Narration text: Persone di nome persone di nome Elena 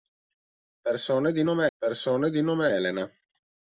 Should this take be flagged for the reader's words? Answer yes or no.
no